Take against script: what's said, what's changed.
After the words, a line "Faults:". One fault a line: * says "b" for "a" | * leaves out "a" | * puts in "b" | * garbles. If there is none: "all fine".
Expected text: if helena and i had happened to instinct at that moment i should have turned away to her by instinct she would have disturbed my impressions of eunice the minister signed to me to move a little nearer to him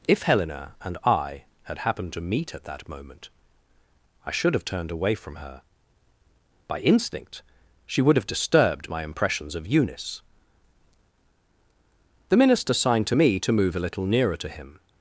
if helena and i had happened to meet at that moment i should have turned away from her by instinct she would have disturbed my impressions of eunice the minister signed to me to move a little nearer to him
Faults:
* says "meet" for "instinct"
* says "from" for "to"